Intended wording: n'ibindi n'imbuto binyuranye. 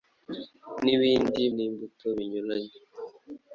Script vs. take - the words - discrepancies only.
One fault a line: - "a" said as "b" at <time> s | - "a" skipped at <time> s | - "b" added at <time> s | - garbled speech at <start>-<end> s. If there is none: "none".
none